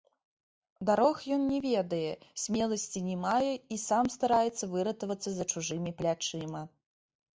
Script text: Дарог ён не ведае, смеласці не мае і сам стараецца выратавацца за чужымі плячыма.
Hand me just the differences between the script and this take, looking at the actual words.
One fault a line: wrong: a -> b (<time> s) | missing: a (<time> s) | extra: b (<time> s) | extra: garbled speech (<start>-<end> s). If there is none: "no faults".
no faults